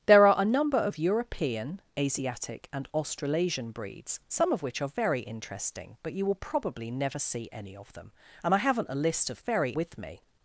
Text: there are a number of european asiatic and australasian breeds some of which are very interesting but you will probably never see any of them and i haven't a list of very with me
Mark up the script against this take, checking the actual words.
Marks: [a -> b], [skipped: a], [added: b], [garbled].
there are a number of european asiatic and australasian breeds some of which are very interesting but you will probably never see any of them and i haven't a list of very with me